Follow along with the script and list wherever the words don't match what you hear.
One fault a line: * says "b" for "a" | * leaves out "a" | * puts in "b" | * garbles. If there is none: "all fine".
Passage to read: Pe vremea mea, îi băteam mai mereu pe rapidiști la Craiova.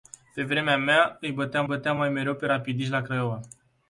* puts in "băteam"